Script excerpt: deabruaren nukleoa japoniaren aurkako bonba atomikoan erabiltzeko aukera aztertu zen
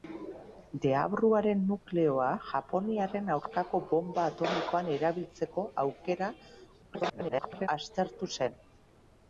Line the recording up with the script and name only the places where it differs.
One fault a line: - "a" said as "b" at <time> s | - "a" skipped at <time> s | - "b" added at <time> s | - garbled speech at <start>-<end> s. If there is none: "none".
- garbled speech at 6.8-7.7 s